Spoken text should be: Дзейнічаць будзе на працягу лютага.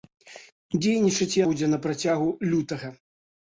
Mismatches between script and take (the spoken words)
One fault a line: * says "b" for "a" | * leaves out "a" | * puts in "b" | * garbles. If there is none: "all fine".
all fine